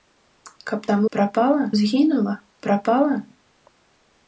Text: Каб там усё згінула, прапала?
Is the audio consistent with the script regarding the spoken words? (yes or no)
no